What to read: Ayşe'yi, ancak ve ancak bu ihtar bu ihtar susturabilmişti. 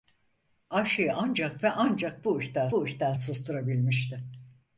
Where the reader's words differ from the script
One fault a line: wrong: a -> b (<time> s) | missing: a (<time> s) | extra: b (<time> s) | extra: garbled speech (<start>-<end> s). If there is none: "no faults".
no faults